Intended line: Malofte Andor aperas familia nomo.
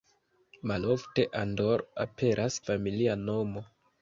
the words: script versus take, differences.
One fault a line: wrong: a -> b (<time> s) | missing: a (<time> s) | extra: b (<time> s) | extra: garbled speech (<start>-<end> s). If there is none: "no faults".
no faults